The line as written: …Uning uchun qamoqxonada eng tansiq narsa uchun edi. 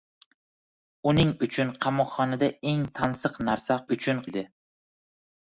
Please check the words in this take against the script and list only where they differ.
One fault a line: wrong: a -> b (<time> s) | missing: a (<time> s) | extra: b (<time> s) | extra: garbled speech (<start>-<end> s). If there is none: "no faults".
no faults